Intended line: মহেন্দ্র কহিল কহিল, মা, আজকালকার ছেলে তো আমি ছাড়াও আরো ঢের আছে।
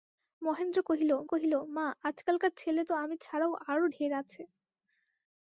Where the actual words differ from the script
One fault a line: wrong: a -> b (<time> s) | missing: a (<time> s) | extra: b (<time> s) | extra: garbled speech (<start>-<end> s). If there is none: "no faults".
no faults